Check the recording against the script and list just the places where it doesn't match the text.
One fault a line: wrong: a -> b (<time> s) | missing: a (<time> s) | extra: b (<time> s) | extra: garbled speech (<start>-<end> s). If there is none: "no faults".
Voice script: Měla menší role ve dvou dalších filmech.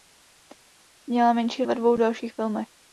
missing: role (1.6 s)